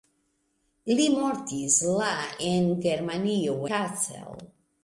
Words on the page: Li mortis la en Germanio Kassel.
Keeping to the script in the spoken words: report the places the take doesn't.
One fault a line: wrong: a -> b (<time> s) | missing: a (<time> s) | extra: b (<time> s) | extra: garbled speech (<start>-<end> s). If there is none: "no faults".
no faults